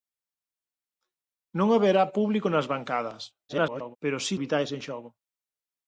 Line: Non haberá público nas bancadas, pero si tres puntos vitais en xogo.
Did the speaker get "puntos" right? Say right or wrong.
wrong